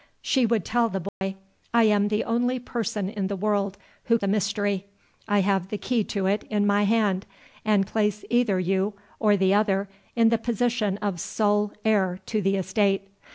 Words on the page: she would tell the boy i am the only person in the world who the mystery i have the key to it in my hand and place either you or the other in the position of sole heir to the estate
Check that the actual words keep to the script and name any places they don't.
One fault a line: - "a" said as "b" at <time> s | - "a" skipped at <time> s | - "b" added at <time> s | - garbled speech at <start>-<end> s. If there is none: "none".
none